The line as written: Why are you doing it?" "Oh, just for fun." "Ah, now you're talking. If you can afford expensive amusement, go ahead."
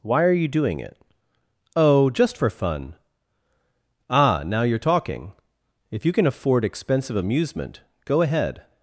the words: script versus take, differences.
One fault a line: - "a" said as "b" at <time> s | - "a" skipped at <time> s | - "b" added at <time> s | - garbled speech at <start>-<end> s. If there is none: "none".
none